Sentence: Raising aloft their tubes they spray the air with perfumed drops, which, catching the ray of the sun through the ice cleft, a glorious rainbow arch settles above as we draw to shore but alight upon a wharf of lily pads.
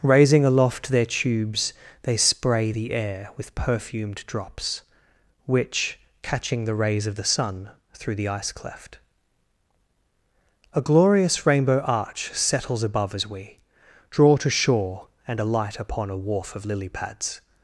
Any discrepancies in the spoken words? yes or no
yes